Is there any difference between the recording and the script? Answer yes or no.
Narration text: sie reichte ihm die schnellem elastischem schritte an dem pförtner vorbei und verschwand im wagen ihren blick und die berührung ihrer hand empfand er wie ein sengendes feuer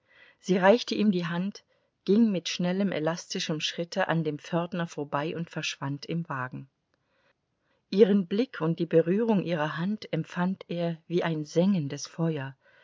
yes